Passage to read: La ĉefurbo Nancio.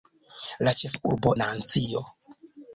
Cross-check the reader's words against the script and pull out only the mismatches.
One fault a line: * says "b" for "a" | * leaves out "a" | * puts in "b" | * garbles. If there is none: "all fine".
all fine